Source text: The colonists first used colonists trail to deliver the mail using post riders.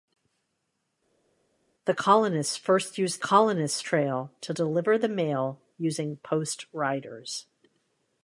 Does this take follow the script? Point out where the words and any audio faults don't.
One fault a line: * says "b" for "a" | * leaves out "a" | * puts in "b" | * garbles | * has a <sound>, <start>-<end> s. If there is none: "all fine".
all fine